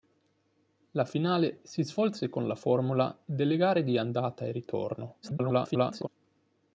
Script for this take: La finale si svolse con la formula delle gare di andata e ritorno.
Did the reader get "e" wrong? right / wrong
right